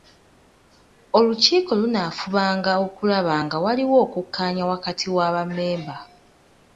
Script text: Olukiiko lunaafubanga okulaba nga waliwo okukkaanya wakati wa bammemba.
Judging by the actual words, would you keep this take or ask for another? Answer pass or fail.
pass